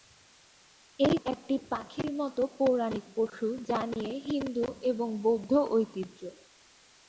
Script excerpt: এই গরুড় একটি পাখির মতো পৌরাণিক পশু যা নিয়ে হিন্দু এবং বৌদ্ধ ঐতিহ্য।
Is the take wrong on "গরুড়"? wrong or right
wrong